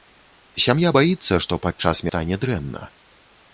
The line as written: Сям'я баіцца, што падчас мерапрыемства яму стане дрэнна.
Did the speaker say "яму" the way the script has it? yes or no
no